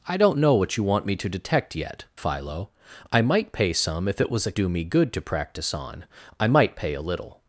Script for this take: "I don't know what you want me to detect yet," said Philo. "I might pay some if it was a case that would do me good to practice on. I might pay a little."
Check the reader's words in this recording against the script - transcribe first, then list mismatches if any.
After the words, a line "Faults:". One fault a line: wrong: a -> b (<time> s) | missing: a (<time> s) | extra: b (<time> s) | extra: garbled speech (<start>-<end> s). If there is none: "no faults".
"I don't know what you want me to detect yet," Philo. "I might pay some if it was a do me good to practice on. I might pay a little."
Faults:
missing: said (2.0 s)
missing: case that would (4.5 s)